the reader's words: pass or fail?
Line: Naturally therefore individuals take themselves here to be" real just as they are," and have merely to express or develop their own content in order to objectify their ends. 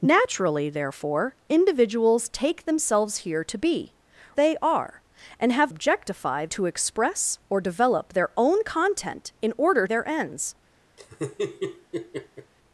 fail